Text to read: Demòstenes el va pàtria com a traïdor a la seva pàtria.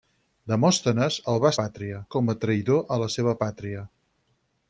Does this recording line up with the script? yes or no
yes